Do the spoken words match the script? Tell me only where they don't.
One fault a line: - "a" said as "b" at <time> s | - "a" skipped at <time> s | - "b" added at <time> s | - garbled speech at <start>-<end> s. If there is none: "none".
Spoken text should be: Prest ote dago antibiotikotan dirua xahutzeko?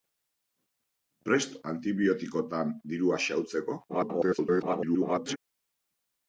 - "ote dago" skipped at 1.5 s
- garbled speech at 3.9-5.4 s